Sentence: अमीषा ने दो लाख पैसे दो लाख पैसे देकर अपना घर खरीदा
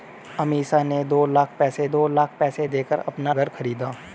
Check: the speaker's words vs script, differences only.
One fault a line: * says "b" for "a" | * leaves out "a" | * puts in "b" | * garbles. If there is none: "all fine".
all fine